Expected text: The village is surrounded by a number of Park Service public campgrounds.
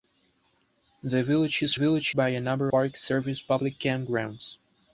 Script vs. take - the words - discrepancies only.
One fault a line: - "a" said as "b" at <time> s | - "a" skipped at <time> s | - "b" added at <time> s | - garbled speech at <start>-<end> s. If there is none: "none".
- "surrounded" said as "village" at 1.7 s
- "of" skipped at 2.7 s